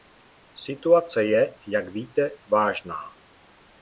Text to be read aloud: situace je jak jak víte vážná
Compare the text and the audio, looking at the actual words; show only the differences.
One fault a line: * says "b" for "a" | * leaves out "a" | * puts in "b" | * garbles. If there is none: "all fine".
* leaves out "jak"